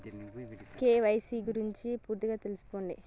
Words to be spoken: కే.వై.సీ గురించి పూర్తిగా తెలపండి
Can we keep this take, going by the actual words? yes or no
yes